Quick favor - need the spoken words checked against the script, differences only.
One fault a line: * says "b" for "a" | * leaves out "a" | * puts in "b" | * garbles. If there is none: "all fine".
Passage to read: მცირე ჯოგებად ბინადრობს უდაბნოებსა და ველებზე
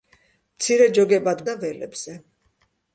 * leaves out "ბინადრობს უდაბნოებსა"